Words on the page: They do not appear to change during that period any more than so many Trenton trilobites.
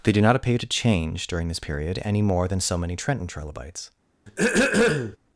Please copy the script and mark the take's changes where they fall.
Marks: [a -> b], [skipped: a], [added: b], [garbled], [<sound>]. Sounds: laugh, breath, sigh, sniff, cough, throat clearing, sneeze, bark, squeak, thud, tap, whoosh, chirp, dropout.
They do not appear to change during [that -> this] period any more than so many Trenton trilobites. [throat clearing]